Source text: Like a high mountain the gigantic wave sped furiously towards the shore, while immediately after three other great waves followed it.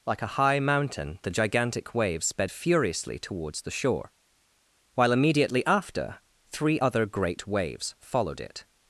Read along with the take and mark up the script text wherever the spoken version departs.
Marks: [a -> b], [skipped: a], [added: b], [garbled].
Like a high mountain the gigantic wave sped furiously towards the shore, while immediately after three other great waves followed it.